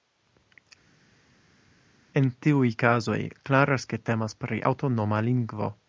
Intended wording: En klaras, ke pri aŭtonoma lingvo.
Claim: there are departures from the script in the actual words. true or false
true